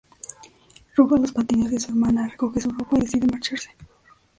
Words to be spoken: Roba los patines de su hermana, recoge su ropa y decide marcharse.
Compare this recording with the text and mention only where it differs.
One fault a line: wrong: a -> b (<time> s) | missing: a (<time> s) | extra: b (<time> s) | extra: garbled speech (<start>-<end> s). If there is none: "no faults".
no faults